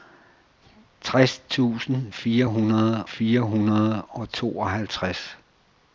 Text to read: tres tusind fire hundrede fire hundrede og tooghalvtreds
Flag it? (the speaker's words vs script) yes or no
no